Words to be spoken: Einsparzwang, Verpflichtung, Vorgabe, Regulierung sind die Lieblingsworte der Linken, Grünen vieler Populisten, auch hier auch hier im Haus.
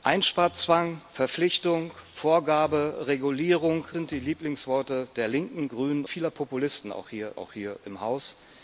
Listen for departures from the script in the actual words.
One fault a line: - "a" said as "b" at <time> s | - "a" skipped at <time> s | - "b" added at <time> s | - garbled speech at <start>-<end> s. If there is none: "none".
none